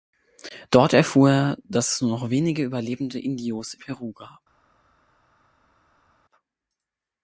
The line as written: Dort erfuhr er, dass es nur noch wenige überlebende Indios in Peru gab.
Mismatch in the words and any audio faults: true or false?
true